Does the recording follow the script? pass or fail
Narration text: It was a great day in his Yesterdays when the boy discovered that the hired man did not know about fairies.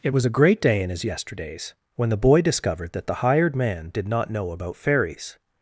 pass